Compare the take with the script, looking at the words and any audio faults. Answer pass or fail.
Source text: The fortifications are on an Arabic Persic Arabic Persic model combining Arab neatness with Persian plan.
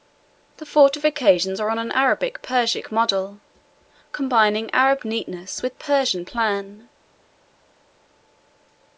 fail